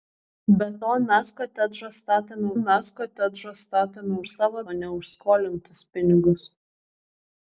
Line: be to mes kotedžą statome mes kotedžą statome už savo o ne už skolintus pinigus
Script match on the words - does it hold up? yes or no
yes